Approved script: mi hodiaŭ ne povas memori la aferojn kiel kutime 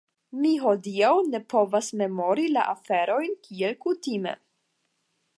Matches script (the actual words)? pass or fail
pass